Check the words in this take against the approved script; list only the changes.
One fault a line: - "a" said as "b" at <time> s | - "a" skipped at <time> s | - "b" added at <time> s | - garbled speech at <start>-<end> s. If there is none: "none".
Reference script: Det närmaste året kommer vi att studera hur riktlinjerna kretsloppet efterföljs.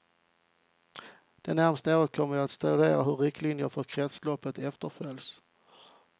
- "för" added at 3.7 s